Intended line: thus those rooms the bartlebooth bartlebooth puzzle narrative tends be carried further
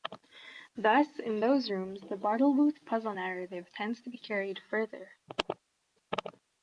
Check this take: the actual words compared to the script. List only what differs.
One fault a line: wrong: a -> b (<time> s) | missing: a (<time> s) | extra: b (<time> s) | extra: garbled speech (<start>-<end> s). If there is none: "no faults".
extra: in (1.2 s)
missing: bartlebooth (2.9 s)
extra: to (4.0 s)